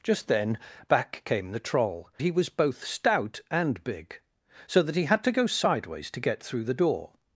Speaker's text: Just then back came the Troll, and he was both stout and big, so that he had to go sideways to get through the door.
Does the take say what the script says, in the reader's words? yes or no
no